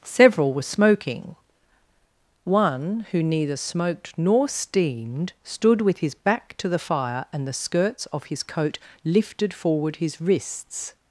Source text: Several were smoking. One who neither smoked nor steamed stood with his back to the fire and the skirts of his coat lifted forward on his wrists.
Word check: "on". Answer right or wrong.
wrong